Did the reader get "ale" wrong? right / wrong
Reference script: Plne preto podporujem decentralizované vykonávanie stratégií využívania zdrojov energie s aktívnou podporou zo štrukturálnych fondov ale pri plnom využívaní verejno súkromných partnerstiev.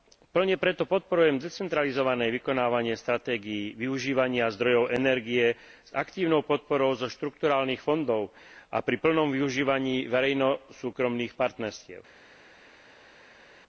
wrong